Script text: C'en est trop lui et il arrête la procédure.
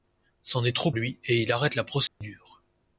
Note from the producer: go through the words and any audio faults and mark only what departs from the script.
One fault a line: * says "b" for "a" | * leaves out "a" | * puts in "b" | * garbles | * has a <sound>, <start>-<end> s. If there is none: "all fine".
* has a dropout, 2.1-2.2 s